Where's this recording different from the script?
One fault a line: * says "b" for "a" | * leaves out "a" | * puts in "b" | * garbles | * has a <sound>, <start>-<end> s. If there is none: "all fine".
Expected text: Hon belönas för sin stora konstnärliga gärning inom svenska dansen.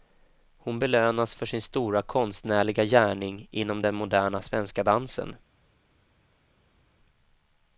* puts in "den moderna"